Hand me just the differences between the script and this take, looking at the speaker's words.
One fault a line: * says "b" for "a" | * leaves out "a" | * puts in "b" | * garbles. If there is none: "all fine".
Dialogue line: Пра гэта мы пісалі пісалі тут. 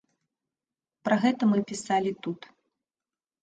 * leaves out "пісалі"